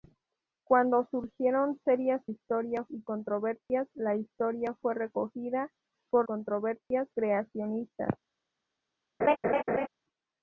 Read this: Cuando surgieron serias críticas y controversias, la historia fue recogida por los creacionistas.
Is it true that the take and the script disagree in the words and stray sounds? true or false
true